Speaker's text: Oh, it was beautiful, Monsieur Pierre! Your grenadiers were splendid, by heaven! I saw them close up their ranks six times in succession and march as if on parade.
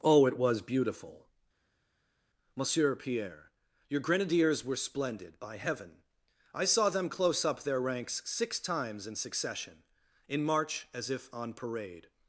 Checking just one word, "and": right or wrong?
wrong